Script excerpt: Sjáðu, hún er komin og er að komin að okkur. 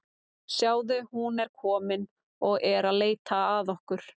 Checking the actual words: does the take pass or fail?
fail